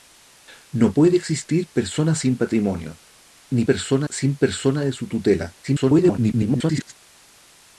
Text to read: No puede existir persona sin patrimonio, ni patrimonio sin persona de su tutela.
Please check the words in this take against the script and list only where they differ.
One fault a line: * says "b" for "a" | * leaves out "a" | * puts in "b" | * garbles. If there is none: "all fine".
* says "persona" for "patrimonio"
* garbles